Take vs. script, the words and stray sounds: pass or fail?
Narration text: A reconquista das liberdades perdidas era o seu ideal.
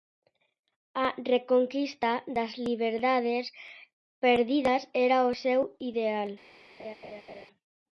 fail